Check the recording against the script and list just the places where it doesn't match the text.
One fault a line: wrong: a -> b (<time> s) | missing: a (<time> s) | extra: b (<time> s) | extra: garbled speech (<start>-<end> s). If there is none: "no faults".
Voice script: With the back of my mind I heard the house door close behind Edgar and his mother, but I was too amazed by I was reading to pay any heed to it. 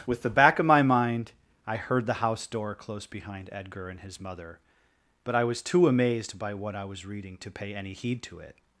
extra: what (6.5 s)